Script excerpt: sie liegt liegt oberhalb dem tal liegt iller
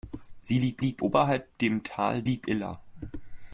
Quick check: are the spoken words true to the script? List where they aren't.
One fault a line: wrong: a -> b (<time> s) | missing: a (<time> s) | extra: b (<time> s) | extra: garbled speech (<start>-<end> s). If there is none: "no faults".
no faults